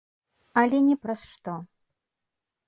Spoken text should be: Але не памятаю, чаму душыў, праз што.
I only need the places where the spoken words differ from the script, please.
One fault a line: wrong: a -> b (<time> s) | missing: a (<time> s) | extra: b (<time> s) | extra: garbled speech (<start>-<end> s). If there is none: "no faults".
missing: памятаю чаму душыў (0.9 s)